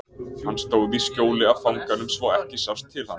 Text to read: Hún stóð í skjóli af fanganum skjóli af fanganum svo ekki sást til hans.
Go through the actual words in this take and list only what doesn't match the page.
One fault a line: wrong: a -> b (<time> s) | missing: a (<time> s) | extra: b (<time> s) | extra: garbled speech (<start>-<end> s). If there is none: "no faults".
wrong: Hún -> Hann (0.5 s)
missing: skjóli af fanganum (2.1 s)